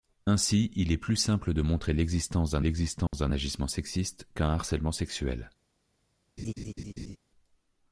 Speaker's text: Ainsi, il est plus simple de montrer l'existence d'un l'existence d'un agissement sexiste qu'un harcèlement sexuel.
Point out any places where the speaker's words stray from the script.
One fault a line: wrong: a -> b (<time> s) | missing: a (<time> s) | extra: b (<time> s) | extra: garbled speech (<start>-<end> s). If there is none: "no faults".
no faults